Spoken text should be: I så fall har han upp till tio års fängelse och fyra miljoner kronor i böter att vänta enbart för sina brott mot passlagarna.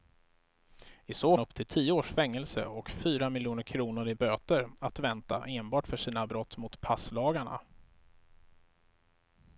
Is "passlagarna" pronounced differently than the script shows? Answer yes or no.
no